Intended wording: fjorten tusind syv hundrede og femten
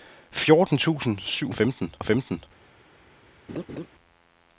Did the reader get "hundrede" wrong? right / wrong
wrong